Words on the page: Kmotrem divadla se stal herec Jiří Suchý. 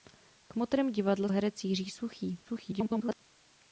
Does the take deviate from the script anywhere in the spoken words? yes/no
yes